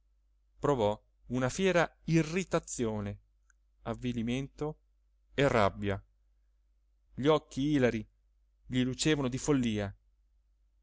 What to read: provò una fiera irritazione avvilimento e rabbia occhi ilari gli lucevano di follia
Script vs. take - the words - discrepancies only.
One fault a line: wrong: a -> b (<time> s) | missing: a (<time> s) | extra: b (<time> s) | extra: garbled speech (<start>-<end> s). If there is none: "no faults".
extra: gli (7.1 s)